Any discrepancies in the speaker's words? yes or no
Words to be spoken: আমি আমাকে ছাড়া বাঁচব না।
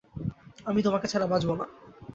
yes